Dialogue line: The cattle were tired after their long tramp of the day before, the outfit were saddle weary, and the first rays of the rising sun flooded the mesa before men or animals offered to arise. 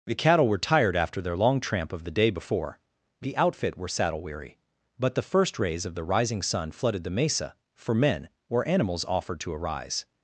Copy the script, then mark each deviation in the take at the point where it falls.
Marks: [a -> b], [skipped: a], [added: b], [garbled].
The cattle were tired after their long tramp of the day before, the outfit were saddle weary, [and -> but] the first rays of the rising sun flooded the mesa [before -> for] men or animals offered to arise.